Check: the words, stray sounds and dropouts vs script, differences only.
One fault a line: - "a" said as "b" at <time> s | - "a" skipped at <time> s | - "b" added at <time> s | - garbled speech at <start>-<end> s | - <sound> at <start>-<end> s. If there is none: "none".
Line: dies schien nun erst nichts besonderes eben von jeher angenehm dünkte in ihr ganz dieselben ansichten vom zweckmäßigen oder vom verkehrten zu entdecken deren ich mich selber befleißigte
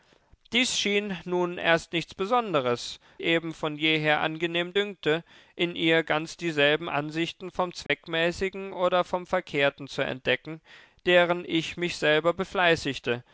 - dropout at 7.9-7.9 s